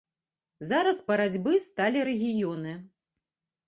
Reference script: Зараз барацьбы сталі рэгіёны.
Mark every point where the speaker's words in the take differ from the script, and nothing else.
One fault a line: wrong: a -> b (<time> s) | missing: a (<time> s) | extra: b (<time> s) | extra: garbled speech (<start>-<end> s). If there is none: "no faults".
no faults